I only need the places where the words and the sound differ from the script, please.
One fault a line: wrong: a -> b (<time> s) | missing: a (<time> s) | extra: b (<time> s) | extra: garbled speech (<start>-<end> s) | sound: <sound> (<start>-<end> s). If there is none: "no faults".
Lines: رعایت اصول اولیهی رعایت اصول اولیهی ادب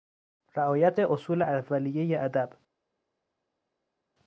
missing: رعایت اصول اولیهی (2.2 s)